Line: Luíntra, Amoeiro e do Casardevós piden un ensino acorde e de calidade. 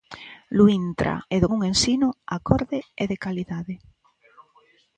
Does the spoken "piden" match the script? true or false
false